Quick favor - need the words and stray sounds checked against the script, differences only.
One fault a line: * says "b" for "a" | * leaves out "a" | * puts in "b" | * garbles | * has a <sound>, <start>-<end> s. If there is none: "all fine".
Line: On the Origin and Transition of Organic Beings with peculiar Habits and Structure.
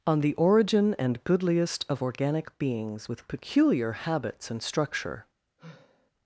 * says "Goodliest" for "Transition"
* has a sigh, 5.6-6.1 s